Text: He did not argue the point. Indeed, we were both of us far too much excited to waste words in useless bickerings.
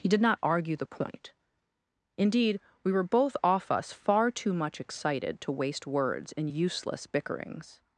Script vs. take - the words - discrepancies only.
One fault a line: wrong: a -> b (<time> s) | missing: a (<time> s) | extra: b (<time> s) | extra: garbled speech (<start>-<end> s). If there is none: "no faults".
wrong: of -> off (3.4 s)